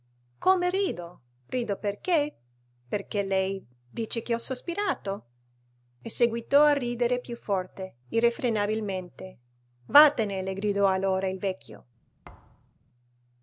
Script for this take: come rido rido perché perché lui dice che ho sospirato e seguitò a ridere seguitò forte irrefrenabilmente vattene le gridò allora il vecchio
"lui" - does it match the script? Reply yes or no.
no